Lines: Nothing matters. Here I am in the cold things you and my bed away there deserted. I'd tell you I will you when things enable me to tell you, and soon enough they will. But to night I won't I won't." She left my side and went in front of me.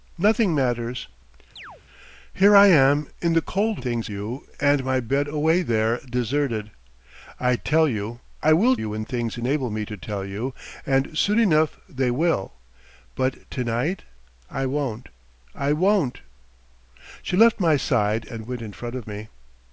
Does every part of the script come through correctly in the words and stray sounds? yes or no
no